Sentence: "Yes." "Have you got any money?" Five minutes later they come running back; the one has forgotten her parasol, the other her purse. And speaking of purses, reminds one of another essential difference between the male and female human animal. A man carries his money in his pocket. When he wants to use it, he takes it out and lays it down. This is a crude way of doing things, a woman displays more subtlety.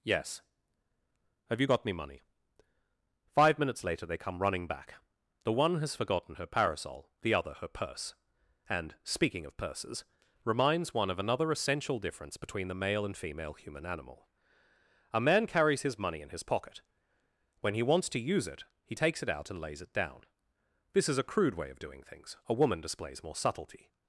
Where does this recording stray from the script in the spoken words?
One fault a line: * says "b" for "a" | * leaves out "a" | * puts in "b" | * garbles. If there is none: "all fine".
* says "me" for "any"